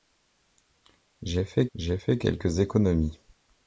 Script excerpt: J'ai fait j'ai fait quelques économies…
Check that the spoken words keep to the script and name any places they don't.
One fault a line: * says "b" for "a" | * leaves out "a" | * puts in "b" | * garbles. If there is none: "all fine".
all fine